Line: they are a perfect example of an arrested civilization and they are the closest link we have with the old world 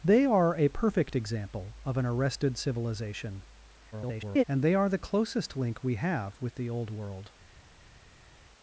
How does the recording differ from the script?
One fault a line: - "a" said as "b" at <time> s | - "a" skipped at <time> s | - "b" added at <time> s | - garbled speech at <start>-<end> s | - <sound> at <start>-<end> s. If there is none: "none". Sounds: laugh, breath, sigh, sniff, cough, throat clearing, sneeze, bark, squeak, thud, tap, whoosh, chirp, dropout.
- garbled speech at 3.9-4.4 s